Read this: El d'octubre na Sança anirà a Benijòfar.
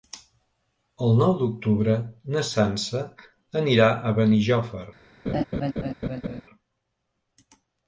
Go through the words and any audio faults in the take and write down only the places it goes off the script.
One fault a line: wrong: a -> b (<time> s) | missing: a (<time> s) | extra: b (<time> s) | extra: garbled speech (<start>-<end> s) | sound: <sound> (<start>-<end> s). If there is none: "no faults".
extra: nou (1.2 s)
sound: laugh (5.3-6.4 s)